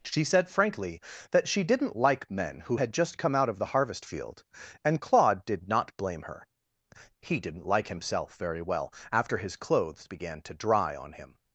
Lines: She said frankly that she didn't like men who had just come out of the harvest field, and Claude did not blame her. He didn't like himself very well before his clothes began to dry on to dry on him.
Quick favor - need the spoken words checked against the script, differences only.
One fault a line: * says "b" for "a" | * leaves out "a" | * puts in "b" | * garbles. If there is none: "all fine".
* says "after" for "before"
* leaves out "to dry on"